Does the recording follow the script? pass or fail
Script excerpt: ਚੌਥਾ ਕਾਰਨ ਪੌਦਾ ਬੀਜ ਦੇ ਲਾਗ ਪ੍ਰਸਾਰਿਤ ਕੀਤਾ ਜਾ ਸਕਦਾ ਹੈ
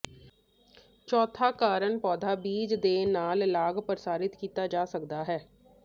fail